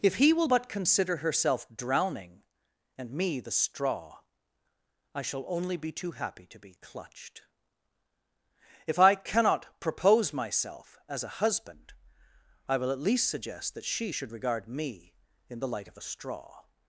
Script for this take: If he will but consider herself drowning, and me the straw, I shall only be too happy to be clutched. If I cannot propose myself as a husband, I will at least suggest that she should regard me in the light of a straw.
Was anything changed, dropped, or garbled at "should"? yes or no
no